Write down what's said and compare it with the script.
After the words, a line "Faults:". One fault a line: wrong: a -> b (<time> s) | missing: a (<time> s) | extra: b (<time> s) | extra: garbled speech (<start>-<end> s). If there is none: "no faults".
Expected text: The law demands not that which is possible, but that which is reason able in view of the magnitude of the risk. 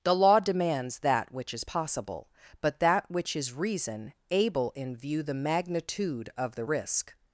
The law demands that which is possible, but that which is reason able in view the magnitude of the risk.
Faults:
missing: not (1.0 s)
missing: of (5.2 s)